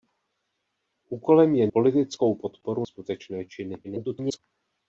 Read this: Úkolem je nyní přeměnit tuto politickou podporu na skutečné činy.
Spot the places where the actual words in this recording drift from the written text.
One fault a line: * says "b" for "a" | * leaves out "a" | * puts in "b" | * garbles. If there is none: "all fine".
* leaves out "nyní přeměnit tuto"
* leaves out "na"
* garbles